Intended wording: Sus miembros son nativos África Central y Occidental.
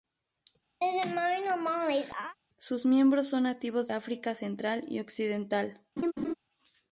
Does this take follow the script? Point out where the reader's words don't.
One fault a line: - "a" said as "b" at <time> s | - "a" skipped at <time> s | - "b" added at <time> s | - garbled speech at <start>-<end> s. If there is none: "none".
none